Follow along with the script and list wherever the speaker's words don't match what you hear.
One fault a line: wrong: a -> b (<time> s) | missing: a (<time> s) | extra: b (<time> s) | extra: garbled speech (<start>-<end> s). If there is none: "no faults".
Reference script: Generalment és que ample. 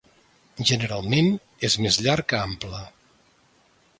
extra: més llarg (1.9 s)